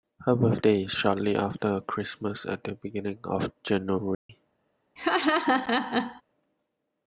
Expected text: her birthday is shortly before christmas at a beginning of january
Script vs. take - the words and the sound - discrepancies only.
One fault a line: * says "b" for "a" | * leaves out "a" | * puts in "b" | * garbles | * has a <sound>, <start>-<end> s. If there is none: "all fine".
* says "after" for "before"
* says "the" for "a"
* has a dropout, 4.1-4.3 s
* has a laugh, 5.0-6.2 s